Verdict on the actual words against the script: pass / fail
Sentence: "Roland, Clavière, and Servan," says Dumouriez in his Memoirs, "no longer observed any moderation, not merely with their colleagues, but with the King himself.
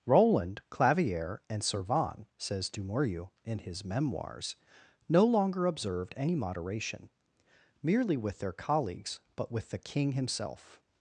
fail